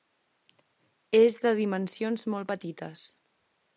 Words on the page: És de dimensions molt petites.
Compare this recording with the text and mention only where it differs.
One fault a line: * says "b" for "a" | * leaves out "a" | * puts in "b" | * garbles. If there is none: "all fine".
all fine